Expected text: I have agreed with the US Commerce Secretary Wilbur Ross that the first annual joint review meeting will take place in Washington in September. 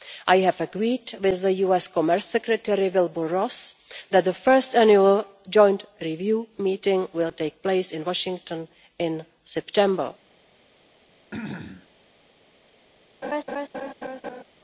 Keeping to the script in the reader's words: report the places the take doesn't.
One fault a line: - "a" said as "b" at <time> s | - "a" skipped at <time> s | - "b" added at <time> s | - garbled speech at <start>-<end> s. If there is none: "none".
none